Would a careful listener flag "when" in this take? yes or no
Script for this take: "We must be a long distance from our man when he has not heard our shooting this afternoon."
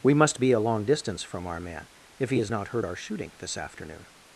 yes